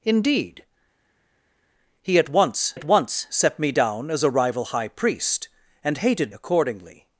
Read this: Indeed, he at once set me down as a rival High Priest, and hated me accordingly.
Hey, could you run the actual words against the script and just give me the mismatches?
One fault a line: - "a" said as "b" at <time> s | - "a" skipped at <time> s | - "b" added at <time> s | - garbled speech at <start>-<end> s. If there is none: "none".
- "at once" added at 2.7 s
- "me" skipped at 6.3 s